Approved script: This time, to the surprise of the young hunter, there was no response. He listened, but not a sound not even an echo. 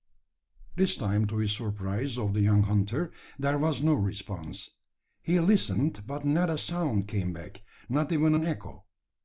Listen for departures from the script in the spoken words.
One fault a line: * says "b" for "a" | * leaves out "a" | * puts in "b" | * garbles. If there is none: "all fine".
* puts in "came back"